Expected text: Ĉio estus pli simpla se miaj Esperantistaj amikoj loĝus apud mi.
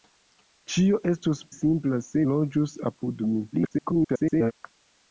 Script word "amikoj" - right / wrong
wrong